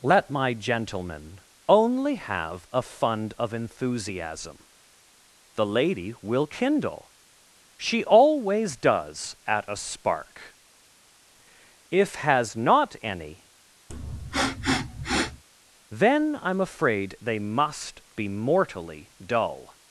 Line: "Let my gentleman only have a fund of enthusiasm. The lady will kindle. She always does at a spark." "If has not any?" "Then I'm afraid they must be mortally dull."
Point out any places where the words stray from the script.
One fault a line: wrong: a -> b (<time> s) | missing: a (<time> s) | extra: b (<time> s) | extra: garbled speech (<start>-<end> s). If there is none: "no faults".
no faults